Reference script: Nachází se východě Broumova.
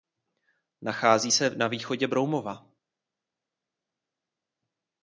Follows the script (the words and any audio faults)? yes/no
no